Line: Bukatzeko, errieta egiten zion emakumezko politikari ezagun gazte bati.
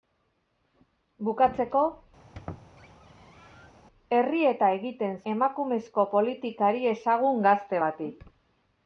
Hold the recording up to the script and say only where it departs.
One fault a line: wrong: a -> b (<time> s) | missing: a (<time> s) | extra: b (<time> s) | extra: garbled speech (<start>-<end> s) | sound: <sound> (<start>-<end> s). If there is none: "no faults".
sound: squeak (2.2-3.7 s)
missing: zion (5.2 s)